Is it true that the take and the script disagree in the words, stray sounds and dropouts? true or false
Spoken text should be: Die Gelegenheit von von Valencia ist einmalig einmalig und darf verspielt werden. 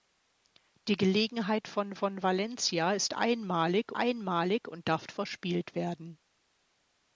false